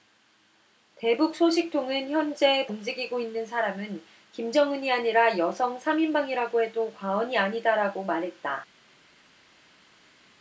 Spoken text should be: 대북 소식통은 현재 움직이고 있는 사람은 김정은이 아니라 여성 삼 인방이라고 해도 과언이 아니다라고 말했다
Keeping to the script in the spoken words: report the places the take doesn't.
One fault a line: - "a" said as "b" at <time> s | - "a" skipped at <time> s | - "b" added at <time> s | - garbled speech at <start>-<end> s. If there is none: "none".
none